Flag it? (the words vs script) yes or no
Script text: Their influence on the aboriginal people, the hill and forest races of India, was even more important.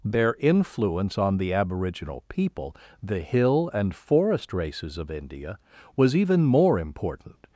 no